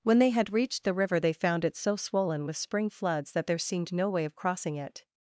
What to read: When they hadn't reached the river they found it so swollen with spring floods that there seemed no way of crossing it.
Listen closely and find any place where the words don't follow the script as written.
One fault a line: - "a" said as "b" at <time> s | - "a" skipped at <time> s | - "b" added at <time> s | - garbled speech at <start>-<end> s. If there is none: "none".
- "hadn't" said as "had" at 0.3 s